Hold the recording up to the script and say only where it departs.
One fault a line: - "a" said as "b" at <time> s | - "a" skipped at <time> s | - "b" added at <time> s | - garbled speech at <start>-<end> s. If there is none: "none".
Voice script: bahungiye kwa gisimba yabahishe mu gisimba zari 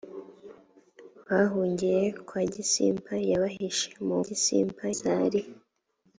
none